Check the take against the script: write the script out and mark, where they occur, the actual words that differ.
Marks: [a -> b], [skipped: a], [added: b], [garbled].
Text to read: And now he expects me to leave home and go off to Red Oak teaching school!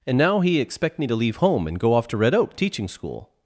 And now he [expects -> expect] me to leave home and go off to Red Oak teaching school!